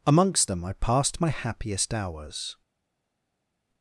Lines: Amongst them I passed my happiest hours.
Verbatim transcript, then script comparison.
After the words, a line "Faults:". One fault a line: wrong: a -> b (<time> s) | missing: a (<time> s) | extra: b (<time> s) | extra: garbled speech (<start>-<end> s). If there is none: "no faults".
Amongst them I passed my happiest hours.
Faults:
no faults